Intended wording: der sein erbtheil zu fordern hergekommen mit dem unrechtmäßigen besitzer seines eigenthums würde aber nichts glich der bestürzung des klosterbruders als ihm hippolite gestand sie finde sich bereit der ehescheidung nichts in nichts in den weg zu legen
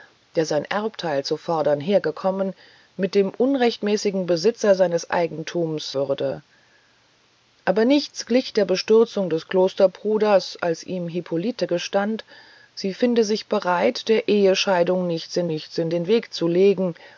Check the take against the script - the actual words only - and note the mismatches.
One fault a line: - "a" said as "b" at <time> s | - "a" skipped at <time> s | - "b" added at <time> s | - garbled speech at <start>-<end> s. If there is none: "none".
none